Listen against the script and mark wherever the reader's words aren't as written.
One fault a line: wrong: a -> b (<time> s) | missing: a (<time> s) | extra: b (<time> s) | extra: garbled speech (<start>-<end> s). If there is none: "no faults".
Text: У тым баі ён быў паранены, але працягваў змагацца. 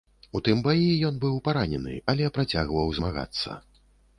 no faults